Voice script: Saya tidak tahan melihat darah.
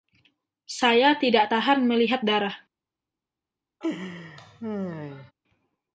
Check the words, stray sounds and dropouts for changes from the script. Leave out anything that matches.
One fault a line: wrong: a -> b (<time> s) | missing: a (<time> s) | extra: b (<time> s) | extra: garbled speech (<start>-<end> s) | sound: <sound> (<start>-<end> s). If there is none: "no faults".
sound: laugh (3.8-5.3 s)